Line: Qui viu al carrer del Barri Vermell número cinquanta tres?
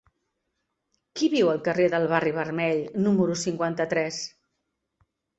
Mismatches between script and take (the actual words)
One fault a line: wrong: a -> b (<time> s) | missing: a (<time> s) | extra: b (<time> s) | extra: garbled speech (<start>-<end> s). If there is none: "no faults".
no faults